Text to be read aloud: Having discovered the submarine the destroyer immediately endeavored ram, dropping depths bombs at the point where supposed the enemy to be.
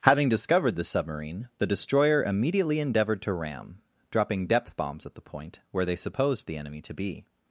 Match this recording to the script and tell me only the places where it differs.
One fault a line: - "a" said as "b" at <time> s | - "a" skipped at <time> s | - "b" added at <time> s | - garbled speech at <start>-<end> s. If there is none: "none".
- "to" added at 3.2 s
- "depths" said as "depth" at 4.5 s
- "they" added at 5.8 s